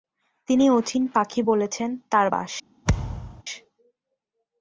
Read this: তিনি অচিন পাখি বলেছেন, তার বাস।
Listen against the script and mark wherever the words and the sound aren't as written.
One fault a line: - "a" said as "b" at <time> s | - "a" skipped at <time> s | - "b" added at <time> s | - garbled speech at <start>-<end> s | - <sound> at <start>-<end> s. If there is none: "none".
- thud at 2.9-3.4 s